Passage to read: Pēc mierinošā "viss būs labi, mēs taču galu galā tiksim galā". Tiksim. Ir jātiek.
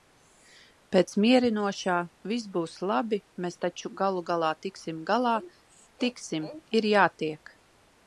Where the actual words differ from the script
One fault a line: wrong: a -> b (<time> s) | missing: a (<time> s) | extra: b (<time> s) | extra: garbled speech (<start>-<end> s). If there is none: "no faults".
no faults